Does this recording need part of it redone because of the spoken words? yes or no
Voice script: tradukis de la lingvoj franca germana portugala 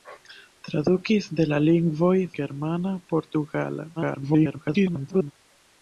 yes